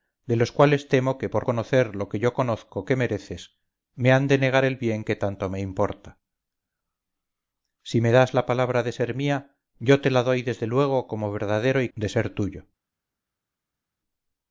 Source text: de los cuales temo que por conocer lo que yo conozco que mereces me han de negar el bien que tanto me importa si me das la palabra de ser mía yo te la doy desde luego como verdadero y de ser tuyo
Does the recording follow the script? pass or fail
pass